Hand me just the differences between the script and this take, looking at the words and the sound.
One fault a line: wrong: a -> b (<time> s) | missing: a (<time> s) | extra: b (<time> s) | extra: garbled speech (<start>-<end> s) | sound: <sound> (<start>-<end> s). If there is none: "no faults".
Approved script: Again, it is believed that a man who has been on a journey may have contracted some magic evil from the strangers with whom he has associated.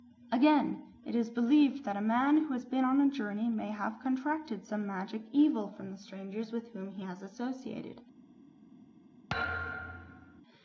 sound: thud (9.3-10.4 s)